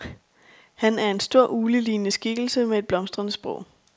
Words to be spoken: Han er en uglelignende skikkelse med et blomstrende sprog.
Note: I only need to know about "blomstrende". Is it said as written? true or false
true